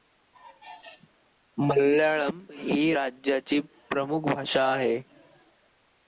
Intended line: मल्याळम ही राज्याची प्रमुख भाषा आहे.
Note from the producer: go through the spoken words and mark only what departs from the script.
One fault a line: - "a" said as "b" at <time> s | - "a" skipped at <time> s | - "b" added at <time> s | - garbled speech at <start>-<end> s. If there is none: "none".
none